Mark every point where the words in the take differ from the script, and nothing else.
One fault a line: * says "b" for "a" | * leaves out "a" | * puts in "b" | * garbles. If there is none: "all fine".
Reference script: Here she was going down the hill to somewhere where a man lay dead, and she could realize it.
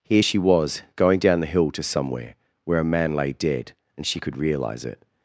all fine